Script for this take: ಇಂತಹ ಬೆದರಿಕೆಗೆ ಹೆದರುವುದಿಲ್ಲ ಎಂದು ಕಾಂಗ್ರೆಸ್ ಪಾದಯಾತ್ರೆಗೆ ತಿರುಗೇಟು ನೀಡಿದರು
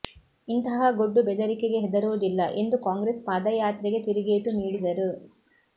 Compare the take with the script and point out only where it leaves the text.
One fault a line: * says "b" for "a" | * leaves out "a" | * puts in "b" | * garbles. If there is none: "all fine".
* puts in "ಗೊಡ್ಡು"